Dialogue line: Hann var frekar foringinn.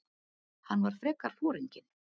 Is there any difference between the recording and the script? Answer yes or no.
no